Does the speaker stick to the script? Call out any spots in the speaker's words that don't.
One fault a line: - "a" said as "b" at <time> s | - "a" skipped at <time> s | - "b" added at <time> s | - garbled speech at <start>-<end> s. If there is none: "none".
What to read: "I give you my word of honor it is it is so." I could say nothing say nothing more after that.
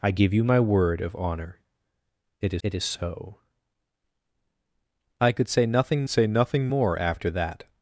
none